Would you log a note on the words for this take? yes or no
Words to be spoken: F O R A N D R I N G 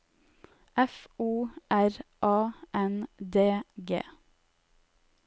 yes